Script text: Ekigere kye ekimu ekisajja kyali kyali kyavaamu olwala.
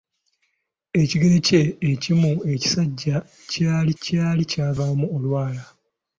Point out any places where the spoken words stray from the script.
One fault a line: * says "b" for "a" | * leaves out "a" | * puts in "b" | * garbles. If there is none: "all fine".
all fine